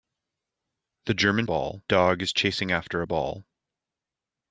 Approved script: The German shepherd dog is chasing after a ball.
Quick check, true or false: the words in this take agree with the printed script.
false